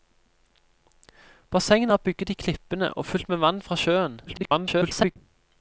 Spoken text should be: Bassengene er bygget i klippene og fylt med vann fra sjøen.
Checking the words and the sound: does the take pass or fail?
fail